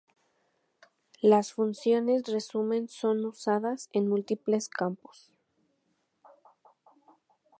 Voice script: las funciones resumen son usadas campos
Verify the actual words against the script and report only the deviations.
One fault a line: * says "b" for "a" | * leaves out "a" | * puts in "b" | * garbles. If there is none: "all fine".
* puts in "en múltiples"